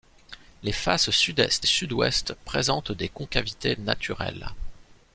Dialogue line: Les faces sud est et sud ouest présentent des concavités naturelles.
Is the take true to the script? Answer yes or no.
yes